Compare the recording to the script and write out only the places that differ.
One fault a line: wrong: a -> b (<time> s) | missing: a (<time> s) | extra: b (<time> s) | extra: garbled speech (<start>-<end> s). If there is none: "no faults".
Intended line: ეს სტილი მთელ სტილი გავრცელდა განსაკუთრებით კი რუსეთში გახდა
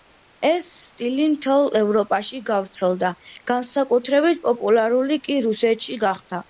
wrong: სტილი -> ევროპაში (1.8 s)
extra: პოპულარული (4.5 s)